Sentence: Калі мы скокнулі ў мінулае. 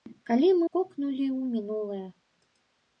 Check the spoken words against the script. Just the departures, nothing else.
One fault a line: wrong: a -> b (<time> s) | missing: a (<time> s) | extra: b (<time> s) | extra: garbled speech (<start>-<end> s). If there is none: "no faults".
no faults